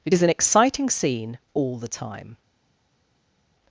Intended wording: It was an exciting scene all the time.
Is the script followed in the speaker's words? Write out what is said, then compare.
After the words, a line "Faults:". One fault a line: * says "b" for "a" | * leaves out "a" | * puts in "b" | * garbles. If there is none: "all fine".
It is an exciting scene all the time.
Faults:
* says "is" for "was"